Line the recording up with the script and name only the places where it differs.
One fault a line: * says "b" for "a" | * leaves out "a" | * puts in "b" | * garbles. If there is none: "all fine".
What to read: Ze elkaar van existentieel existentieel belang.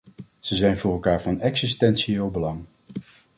* puts in "zijn voor"
* leaves out "existentieel"